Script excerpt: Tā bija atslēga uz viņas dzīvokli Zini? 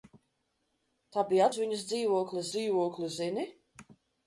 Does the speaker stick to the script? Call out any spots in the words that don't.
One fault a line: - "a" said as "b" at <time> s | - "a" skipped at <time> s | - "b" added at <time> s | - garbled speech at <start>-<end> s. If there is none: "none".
- "atslēga" skipped at 1.5 s
- "dzīvokli" added at 2.6 s